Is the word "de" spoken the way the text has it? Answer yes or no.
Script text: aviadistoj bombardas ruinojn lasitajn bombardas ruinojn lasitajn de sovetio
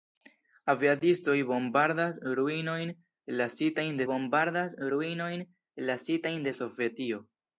yes